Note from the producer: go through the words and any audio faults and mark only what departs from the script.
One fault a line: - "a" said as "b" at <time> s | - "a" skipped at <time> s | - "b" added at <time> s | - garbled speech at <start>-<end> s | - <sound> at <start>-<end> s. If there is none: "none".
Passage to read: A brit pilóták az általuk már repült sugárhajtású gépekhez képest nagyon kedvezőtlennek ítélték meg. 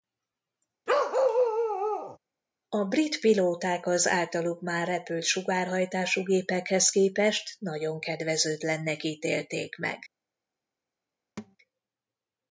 - bark at 0.9-2.2 s
- thud at 11.4-11.6 s